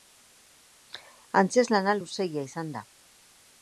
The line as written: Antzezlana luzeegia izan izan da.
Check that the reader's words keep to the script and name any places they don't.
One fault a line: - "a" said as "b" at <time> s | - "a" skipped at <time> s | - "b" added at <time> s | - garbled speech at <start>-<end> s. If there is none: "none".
- "izan" skipped at 2.8 s